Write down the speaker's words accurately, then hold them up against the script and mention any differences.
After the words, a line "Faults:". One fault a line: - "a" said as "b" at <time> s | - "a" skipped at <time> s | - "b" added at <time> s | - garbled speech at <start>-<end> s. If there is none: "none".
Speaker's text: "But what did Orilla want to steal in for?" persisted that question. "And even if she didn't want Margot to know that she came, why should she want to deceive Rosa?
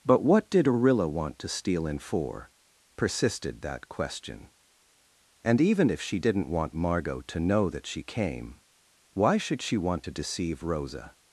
"But what did Orilla want to steal in for?" persisted that question. "And even if she didn't want Margot to know that she came, why should she want to deceive Rosa?
Faults:
none